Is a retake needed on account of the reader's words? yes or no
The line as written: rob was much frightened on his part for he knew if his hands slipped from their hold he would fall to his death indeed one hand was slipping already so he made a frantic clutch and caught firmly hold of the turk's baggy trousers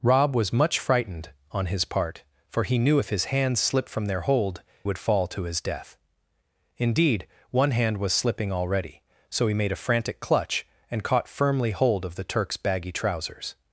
yes